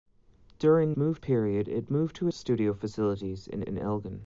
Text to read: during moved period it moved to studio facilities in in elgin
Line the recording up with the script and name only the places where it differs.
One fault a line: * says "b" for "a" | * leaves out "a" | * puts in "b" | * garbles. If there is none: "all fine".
all fine